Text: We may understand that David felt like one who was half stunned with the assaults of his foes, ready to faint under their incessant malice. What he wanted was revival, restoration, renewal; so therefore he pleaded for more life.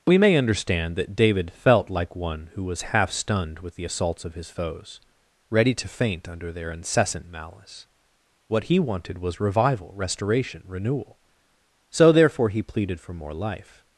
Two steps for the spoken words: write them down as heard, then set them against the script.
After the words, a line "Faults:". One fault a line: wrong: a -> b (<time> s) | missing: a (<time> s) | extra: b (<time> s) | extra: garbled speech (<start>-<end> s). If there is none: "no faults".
We may understand that David felt like one who was half stunned with the assaults of his foes, ready to faint under their incessant malice. What he wanted was revival, restoration, renewal; so therefore he pleaded for more life.
Faults:
no faults